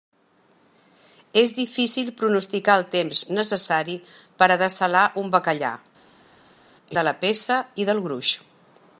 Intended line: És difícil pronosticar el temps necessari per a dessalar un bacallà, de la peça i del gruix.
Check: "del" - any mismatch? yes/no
no